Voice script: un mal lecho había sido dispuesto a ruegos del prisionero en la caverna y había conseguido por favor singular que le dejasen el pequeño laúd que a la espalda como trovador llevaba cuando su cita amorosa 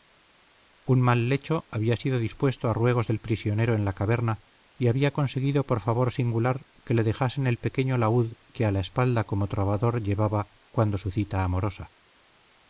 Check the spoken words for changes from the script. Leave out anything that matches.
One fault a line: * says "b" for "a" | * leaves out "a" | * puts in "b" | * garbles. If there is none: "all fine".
all fine